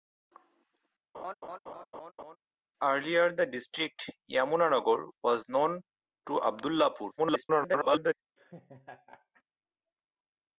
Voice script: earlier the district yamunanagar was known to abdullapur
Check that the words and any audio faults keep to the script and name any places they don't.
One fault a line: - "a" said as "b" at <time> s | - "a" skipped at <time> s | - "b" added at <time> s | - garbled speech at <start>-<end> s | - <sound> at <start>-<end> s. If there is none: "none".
- laugh at 1.1-2.4 s
- garbled speech at 7.2-8.1 s
- laugh at 8.4-9.4 s